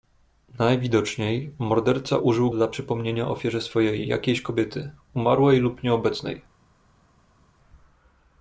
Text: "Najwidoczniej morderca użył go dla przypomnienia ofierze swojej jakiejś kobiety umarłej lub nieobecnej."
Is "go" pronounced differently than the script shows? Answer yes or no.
yes